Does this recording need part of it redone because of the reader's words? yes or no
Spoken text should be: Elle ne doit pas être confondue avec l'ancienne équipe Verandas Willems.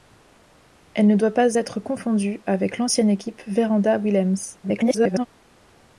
yes